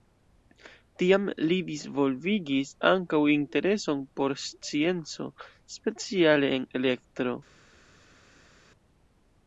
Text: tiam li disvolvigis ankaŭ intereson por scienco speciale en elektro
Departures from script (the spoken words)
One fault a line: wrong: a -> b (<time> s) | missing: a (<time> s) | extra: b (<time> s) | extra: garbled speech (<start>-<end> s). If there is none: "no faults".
no faults